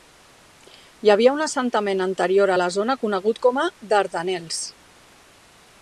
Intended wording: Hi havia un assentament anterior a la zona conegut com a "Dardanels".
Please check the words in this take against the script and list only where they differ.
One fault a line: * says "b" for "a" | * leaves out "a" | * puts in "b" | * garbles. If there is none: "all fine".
all fine